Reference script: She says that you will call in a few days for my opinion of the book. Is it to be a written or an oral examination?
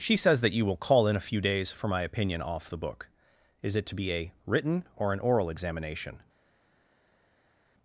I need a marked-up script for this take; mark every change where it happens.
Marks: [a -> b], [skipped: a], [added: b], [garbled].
She says that you will call in a few days for my opinion [of -> off] the book. Is it to be a written or an oral examination?